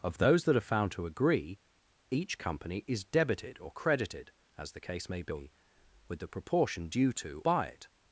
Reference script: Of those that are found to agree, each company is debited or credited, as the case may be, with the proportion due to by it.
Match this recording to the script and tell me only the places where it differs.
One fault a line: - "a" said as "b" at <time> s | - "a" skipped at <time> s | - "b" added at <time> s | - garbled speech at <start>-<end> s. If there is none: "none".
none